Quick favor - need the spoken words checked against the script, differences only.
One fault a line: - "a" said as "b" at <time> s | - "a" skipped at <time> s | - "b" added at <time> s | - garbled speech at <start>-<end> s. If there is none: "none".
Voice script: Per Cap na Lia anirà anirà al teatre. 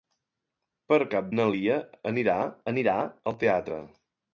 none